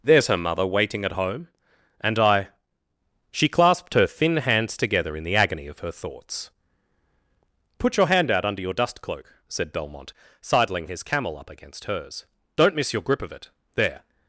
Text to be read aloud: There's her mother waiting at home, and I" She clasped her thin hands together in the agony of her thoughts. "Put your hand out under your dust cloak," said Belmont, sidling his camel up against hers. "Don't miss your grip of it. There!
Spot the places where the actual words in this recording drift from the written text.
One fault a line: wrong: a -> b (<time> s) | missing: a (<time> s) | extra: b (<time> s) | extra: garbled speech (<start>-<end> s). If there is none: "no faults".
no faults